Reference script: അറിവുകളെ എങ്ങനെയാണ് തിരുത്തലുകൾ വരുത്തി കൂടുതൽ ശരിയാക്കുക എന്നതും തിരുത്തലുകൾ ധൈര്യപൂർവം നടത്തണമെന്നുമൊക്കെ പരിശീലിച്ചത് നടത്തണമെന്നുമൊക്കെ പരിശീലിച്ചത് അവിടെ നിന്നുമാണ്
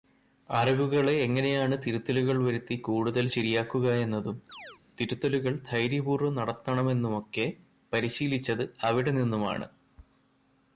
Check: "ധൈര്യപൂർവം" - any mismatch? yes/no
no